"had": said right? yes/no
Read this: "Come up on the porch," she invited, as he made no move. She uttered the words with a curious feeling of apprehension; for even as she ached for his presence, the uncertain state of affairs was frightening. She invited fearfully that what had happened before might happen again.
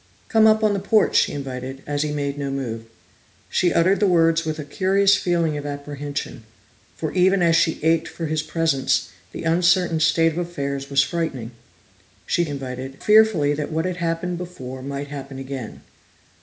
yes